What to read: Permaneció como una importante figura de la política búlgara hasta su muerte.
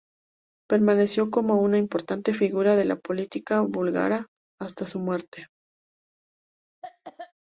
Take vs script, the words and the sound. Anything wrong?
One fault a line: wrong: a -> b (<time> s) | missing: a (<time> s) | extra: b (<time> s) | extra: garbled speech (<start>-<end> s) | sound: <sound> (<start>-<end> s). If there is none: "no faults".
sound: cough (6.8-7.3 s)